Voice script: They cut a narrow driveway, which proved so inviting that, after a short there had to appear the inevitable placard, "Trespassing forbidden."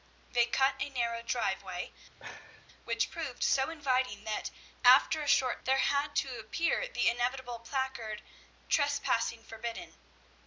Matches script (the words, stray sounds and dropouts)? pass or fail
fail